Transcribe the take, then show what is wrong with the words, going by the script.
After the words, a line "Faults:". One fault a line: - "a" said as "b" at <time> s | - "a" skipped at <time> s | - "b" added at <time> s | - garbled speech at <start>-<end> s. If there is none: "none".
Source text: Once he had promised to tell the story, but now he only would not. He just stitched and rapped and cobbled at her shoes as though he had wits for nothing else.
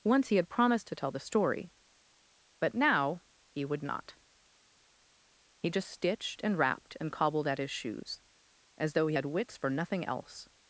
Once he had promised to tell the story, but now he would not. He just stitched and rapped and cobbled at his shoes as though he had wits for nothing else.
Faults:
- "only" skipped at 3.6 s
- "her" said as "his" at 7.6 s